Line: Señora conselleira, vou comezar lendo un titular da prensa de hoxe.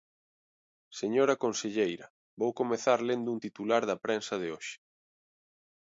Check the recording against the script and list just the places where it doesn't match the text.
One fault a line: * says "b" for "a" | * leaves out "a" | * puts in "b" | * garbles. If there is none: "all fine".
all fine